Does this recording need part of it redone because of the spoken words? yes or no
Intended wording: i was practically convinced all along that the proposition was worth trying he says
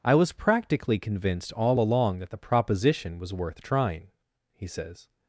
no